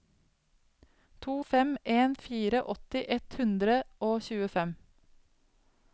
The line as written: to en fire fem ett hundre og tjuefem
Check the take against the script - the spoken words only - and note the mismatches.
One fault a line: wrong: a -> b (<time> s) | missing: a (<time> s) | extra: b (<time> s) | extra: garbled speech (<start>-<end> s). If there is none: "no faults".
extra: fem (1.4 s)
wrong: fem -> åtti (2.8 s)